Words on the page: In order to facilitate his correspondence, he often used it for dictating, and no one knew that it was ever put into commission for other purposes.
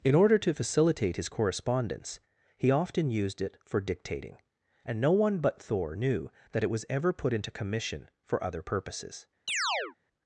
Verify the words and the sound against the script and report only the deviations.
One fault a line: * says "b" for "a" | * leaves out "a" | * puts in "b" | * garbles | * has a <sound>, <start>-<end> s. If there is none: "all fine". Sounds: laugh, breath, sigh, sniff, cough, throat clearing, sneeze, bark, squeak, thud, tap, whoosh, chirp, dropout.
* puts in "but Thor"
* has a chirp, 9.5-10.0 s